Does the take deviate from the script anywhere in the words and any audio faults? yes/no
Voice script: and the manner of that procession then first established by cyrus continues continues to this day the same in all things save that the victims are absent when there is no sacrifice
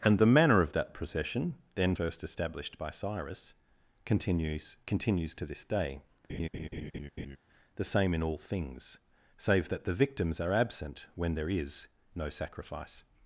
yes